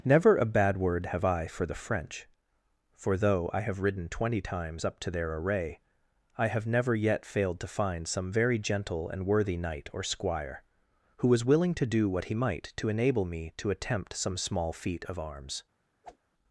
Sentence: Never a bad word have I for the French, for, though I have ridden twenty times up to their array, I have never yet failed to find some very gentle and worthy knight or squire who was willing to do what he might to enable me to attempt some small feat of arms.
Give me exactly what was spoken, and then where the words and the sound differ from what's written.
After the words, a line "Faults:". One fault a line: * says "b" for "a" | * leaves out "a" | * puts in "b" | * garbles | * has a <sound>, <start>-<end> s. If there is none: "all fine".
Never a bad word have I for the French, for, though I have ridden twenty times up to their array, I have never yet failed to find some very gentle and worthy knight or squire who was willing to do what he might to enable me to attempt some small feat of arms.
Faults:
* has a whoosh, 16.0-16.2 s